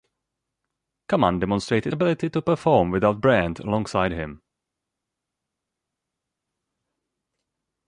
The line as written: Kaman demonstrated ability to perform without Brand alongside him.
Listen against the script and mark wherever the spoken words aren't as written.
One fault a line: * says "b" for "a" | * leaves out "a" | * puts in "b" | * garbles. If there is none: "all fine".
all fine